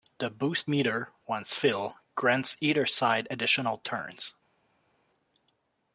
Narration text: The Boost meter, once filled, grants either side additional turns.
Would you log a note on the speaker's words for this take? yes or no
no